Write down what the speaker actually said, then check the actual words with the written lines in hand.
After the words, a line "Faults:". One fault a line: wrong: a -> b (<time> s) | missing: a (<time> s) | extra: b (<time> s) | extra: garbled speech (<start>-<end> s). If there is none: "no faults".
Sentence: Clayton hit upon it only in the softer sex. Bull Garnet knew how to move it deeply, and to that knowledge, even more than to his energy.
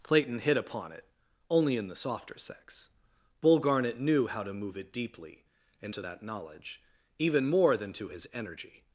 Clayton hit upon it only in the softer sex. Bull Garnet knew how to move it deeply, and to that knowledge, even more than to his energy.
Faults:
no faults